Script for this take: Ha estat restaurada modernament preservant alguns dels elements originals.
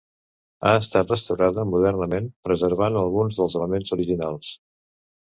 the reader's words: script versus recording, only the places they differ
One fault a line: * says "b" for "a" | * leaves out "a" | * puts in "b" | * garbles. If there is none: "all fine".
all fine